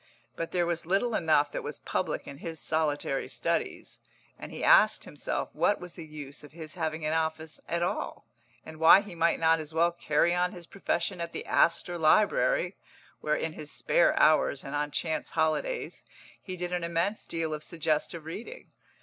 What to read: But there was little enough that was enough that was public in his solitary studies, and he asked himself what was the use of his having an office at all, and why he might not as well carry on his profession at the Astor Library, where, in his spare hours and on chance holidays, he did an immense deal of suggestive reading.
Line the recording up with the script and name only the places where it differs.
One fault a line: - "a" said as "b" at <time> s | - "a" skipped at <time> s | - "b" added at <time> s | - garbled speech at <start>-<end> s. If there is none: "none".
- "enough that was" skipped at 1.8 s